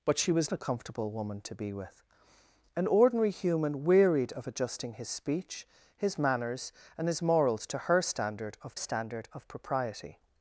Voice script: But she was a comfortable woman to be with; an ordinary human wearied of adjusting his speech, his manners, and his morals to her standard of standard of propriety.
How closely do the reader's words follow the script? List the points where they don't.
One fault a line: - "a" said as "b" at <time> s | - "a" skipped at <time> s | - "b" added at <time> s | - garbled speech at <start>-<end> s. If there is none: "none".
none